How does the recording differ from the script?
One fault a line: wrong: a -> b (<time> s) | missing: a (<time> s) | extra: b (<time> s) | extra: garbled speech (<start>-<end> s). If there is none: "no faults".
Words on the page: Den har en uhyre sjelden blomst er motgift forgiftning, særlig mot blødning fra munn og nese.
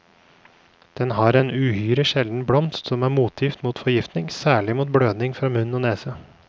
extra: som (2.9 s)
extra: mot (3.6 s)